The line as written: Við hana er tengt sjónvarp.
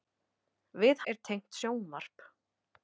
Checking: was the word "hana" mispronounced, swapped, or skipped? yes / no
yes